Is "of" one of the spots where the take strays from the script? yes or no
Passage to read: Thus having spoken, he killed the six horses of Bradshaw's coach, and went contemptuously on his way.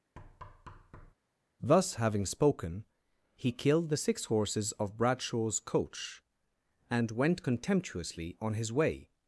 no